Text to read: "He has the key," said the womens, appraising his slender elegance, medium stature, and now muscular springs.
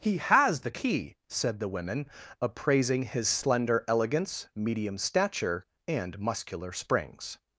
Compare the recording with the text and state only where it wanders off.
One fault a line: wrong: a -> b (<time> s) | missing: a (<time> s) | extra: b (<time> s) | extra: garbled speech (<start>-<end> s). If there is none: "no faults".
wrong: womens -> women (1.7 s)
missing: now (6.2 s)